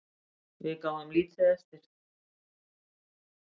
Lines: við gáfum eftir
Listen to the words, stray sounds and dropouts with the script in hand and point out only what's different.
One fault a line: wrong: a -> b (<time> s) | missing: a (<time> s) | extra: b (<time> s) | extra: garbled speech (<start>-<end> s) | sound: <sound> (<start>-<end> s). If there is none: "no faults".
extra: lítið (1.2 s)